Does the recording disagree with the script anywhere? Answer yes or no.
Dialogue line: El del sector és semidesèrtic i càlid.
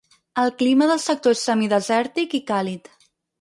yes